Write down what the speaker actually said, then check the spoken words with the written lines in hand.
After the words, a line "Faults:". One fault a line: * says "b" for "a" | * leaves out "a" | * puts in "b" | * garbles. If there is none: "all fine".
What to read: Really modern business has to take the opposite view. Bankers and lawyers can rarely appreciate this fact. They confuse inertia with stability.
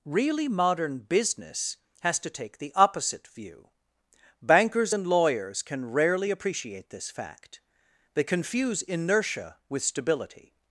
Really modern business has to take the opposite view. Bankers and lawyers can rarely appreciate this fact. They confuse inertia with stability.
Faults:
all fine